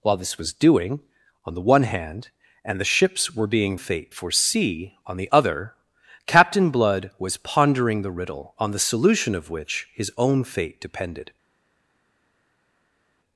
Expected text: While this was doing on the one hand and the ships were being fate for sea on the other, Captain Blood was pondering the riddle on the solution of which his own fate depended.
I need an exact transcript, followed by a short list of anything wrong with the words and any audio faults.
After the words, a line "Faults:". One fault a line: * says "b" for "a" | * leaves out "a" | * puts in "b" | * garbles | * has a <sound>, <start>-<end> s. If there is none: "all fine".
While this was doing on the one hand and the ships were being fate for sea on the other, Captain Blood was pondering the riddle on the solution of which his own fate depended.
Faults:
all fine